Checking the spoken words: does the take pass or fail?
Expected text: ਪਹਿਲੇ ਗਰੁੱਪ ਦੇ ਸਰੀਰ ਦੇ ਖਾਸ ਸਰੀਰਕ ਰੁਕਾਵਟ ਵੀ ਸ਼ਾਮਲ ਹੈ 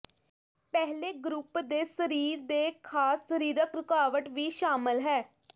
pass